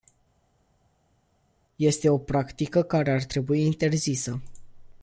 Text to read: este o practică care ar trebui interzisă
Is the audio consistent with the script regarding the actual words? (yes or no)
yes